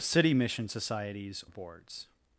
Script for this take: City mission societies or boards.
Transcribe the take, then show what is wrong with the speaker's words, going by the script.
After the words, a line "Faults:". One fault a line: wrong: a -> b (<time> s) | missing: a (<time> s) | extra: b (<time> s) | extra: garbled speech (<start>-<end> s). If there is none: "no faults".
City mission societies boards.
Faults:
missing: or (1.4 s)